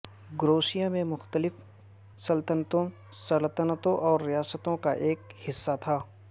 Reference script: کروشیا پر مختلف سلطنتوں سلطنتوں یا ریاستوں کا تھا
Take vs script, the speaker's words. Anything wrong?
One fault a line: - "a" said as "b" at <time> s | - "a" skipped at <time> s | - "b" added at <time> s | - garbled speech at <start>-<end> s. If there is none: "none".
- "پر" said as "میں" at 0.9 s
- "یا" said as "اور" at 4.0 s
- "ایک حصہ" added at 5.1 s